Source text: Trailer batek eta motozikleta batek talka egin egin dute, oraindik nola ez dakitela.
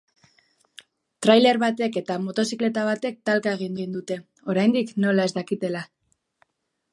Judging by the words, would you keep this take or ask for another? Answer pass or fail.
pass